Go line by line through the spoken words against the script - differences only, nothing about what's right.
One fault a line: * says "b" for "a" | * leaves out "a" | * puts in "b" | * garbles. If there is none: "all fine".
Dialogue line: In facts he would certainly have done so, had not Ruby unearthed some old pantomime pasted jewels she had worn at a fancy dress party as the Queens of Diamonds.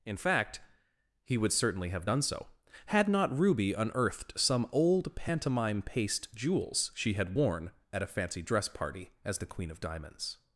* says "fact" for "facts"
* says "paste" for "pasted"
* says "Queen" for "Queens"